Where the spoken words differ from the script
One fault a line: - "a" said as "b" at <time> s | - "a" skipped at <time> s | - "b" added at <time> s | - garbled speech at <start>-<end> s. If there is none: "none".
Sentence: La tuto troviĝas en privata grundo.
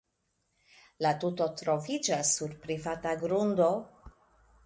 - "en" said as "sur" at 2.4 s